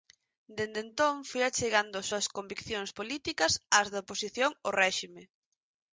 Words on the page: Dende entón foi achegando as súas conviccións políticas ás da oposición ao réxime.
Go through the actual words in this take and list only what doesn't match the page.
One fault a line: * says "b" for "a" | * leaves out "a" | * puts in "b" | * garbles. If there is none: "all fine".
all fine